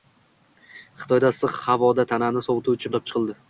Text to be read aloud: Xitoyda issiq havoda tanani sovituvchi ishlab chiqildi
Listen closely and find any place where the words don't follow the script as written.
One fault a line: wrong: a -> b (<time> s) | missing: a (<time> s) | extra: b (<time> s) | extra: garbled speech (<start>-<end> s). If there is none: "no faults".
no faults